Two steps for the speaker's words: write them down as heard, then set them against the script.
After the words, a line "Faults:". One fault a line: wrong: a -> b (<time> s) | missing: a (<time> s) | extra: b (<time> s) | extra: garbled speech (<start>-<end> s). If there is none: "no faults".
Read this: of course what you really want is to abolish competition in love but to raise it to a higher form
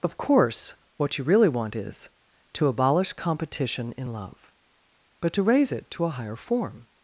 of course what you really want is to abolish competition in love but to raise it to a higher form
Faults:
no faults